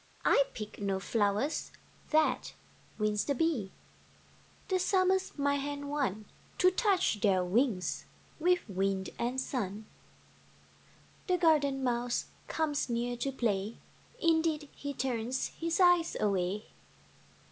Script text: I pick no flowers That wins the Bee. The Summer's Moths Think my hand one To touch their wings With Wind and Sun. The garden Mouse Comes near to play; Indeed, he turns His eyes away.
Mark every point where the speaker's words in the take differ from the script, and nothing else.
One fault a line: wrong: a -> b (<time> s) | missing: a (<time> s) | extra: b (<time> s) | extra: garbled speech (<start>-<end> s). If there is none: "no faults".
missing: Moths Think (5.4 s)